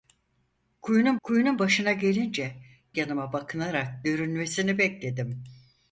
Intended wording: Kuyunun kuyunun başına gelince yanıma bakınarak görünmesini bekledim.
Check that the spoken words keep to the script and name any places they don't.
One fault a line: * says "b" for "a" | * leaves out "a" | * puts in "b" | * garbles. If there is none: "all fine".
all fine